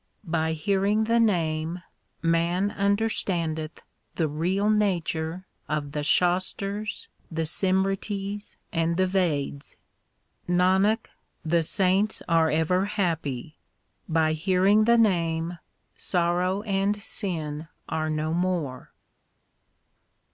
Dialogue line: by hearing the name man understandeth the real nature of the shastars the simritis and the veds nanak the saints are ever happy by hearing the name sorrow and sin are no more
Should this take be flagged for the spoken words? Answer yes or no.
no